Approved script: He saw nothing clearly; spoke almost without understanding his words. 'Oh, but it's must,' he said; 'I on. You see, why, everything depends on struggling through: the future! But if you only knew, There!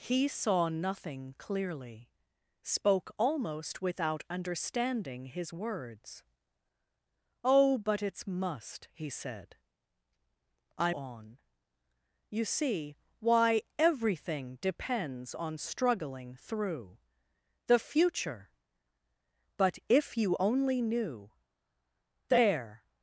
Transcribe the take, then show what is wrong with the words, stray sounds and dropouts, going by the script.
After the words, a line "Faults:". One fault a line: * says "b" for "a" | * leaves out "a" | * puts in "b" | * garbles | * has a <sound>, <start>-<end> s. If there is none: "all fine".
He saw nothing clearly; spoke almost without understanding his words. 'Oh, but it's must,' he said; 'I on. You see, why, everything depends on struggling through: the future! But if you only knew, There!
Faults:
all fine